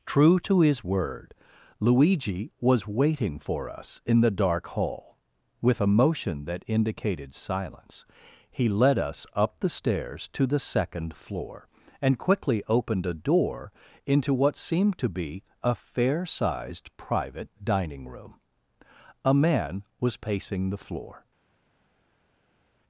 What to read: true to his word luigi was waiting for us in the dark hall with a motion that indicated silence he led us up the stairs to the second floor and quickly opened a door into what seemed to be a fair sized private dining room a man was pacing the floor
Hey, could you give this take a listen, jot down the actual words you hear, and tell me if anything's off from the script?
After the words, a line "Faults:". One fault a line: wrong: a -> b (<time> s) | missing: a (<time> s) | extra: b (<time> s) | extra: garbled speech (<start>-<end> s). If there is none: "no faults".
true to his word luigi was waiting for us in the dark hall with a motion that indicated silence he led us up the stairs to the second floor and quickly opened a door into what seemed to be a fair sized private dining room a man was pacing the floor
Faults:
no faults